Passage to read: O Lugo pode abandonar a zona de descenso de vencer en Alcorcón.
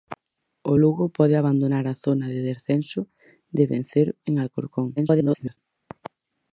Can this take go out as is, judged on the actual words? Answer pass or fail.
fail